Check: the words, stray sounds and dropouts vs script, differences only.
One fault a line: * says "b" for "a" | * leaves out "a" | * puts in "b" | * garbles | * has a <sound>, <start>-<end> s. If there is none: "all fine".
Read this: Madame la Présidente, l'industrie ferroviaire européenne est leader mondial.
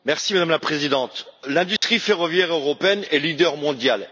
* has a dropout, 1.8-1.8 s